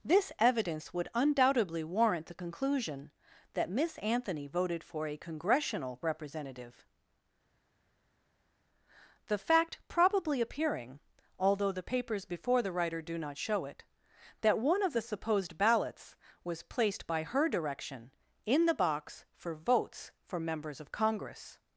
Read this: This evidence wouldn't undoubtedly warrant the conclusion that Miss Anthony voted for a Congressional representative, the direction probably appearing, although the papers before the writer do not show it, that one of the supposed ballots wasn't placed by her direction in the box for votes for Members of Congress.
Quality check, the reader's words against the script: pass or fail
fail